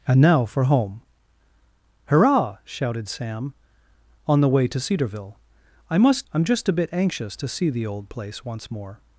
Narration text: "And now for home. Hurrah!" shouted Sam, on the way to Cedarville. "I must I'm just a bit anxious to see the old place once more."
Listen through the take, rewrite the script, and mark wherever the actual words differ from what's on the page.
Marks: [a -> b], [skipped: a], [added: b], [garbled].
"And now for home. Hurrah!" shouted Sam, on the way to Cedarville. "I must I'm just a bit anxious to see the old place once more."